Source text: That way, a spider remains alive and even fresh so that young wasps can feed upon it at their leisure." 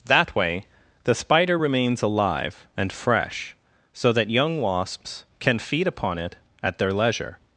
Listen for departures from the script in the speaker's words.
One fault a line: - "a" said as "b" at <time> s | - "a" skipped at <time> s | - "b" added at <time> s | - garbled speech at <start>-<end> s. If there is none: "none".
- "a" said as "the" at 1.0 s
- "even" skipped at 2.9 s